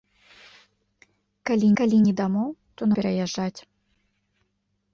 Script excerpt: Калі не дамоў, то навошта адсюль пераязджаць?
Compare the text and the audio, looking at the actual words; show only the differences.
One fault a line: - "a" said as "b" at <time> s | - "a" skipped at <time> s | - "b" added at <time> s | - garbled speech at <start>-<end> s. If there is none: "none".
- "калі" added at 1.8 s
- "навошта адсюль" skipped at 2.9 s